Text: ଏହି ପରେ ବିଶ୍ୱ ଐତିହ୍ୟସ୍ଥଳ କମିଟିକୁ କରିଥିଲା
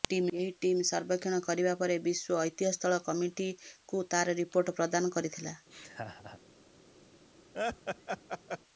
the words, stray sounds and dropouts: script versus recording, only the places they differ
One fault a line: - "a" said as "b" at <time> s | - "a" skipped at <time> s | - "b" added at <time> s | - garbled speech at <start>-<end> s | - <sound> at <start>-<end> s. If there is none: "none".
- "ଟିମ୍ ସର୍ବେକ୍ଷଣ କରିବା" added at 0.6 s
- "ତାର ରିପୋର୍ଟ ପ୍ରଦାନ" added at 4.1 s
- laugh at 5.7-6.4 s
- laugh at 7.5-8.6 s